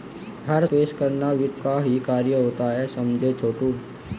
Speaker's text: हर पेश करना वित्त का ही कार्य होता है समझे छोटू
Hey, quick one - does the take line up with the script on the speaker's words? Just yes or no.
yes